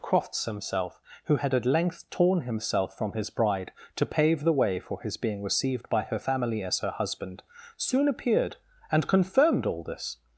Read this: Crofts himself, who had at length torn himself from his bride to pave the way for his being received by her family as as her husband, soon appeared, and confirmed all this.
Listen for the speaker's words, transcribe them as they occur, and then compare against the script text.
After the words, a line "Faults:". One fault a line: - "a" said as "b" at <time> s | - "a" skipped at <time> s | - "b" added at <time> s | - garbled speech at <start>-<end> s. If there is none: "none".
Crofts himself, who had at length torn himself from his bride to pave the way for his being received by her family as her husband, soon appeared, and confirmed all this.
Faults:
- "as" skipped at 6.8 s